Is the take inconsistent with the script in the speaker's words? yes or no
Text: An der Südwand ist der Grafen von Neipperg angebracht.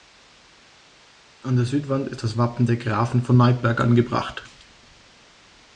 yes